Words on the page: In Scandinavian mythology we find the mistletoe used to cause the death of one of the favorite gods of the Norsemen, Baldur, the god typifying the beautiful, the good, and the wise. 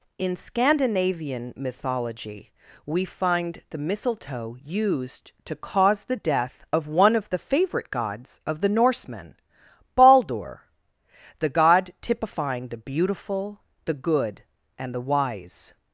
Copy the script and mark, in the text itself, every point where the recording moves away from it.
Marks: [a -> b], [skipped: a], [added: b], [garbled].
In Scandinavian mythology we find the mistletoe used to cause the death of one of the favorite gods of the Norsemen, Baldur, the god typifying the beautiful, the good, and the wise.